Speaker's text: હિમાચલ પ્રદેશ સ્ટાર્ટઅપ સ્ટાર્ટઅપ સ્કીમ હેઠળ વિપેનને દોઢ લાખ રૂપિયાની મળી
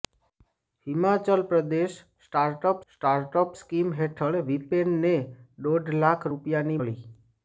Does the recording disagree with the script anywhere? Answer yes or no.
no